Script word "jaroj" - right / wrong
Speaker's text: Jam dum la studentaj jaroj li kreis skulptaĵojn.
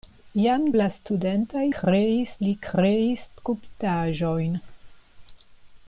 wrong